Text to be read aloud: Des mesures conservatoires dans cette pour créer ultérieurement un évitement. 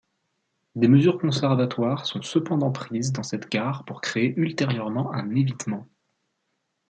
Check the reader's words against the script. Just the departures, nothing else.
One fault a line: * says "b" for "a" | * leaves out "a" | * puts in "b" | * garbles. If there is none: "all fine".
* puts in "sont cependant prises"
* puts in "gare"